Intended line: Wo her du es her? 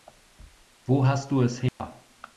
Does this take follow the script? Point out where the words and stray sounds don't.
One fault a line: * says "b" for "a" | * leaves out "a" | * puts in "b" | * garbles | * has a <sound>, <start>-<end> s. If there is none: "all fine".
* says "hast" for "her"
* has a dropout, 1.7-1.8 s